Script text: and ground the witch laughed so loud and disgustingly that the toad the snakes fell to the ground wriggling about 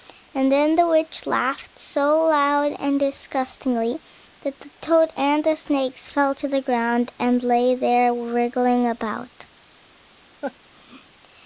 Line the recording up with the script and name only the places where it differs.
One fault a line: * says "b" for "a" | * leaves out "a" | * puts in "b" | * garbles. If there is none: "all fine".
* says "then" for "ground"
* puts in "and"
* puts in "and lay there"